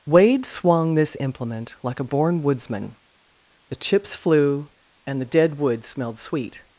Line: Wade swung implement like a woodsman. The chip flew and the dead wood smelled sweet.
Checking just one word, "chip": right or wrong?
wrong